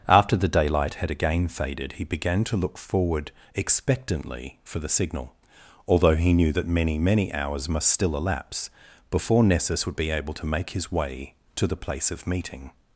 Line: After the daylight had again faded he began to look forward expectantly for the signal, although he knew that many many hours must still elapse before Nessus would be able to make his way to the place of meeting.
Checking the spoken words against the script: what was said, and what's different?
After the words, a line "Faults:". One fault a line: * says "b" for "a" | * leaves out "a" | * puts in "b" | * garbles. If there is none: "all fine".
After the daylight had again faded he began to look forward expectantly for the signal, although he knew that many many hours must still elapse before Nessus would be able to make his way to the place of meeting.
Faults:
all fine